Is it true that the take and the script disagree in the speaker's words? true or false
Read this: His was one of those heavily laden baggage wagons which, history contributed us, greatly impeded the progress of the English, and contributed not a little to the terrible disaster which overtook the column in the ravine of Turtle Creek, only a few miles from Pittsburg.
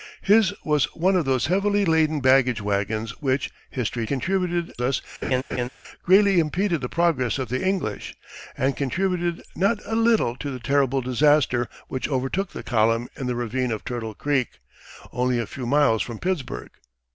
false